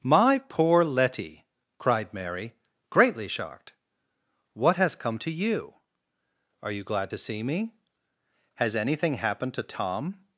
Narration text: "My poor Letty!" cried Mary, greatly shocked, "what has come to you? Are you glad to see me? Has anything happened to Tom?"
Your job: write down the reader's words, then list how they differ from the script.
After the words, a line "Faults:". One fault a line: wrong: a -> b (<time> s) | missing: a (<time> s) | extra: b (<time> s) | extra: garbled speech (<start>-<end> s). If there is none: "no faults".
"My poor Letty!" cried Mary, greatly shocked, "what has come to you? Are you glad to see me? Has anything happened to Tom?"
Faults:
no faults